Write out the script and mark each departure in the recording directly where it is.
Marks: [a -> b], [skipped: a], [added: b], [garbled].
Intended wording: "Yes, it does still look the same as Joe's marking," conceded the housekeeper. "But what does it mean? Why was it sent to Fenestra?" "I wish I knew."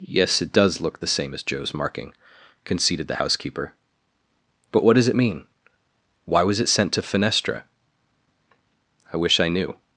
"Yes, it does [skipped: still] look the same as Joe's marking," conceded the housekeeper. "But what does it mean? Why was it sent to Fenestra?" "I wish I knew."